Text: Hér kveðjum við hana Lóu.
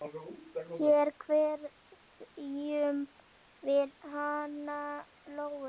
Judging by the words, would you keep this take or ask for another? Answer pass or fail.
pass